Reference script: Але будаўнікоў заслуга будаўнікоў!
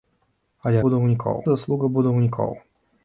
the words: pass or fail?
pass